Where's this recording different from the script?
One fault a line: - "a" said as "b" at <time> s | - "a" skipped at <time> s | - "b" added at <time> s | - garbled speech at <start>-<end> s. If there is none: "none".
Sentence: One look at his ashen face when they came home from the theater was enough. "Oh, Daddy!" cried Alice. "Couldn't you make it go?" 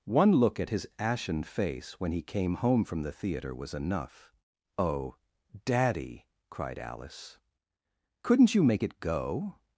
- "they" said as "he" at 2.1 s